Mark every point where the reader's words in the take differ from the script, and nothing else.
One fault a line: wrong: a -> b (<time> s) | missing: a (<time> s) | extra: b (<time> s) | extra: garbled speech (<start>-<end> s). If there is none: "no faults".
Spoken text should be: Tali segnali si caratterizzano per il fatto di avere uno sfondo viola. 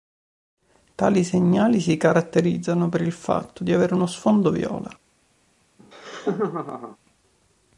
no faults